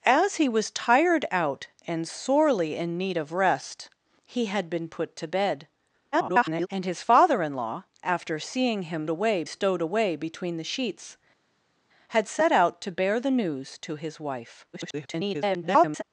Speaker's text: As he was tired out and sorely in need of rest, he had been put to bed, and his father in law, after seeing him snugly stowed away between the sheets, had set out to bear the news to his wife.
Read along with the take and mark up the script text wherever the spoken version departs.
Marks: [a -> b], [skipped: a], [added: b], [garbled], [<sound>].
As he was tired out and sorely in need of rest, he had been put to bed, [garbled] and his father in law, after seeing him [snugly -> away] stowed away between the sheets, had set out to bear the news to his wife. [garbled]